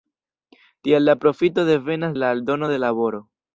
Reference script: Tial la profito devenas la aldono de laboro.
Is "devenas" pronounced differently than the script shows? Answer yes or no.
no